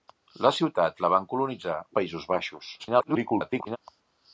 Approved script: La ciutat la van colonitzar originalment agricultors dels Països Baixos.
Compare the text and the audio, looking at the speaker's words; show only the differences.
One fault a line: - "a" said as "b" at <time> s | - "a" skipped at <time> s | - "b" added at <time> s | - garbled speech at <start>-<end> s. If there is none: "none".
- "originalment agricultors dels" skipped at 1.8 s
- garbled speech at 2.8-3.8 s